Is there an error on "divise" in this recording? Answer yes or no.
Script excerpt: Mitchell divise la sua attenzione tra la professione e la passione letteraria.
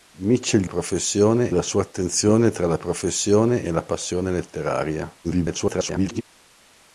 yes